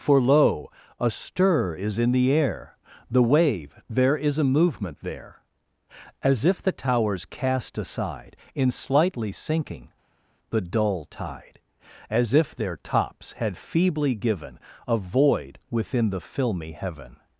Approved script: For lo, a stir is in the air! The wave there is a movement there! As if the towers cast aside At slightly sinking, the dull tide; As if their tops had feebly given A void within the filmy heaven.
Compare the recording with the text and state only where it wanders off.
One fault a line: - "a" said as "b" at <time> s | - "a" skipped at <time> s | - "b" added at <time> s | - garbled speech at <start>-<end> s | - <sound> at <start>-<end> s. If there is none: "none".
- "At" said as "In" at 8.5 s